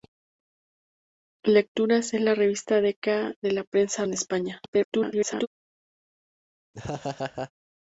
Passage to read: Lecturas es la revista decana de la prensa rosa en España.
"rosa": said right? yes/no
no